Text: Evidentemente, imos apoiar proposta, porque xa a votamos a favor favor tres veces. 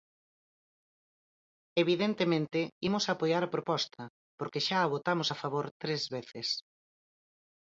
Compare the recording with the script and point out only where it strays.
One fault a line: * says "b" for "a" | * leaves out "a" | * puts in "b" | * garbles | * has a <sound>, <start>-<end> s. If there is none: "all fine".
* puts in "a"
* leaves out "favor"